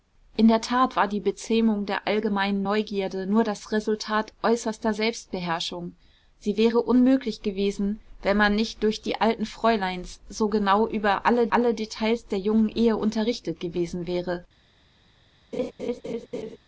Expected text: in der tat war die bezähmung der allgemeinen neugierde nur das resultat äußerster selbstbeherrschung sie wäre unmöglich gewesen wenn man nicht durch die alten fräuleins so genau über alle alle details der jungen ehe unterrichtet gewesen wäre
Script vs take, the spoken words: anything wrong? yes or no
no